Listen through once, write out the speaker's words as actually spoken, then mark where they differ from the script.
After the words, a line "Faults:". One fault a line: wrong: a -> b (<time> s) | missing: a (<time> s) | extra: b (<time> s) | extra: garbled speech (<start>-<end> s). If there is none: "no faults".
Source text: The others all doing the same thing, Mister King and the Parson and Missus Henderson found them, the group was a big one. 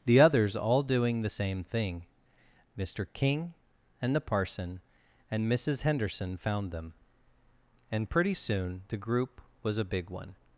The others all doing the same thing, Mister King and the Parson and Missus Henderson found them, and pretty soon the group was a big one.
Faults:
extra: and pretty soon (7.9 s)